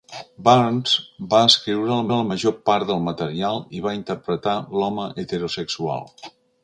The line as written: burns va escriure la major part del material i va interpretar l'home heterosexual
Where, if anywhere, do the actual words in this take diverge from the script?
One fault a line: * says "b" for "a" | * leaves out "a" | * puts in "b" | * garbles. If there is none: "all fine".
* puts in "la"